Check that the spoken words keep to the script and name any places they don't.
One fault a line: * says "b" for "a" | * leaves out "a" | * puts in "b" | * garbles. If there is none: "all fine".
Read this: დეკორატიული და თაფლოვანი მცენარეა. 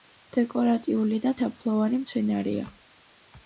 all fine